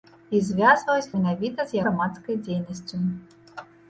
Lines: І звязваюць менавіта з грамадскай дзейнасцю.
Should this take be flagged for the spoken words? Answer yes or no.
no